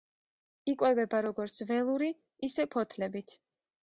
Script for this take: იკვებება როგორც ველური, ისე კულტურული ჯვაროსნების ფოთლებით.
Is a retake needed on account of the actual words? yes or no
yes